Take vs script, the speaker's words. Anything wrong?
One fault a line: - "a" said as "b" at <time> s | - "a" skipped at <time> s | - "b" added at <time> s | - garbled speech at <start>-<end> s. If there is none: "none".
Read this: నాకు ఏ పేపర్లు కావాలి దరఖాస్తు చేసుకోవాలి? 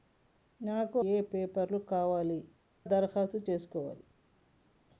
none